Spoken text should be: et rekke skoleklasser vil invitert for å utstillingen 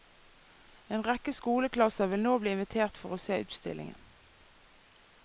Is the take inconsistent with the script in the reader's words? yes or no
yes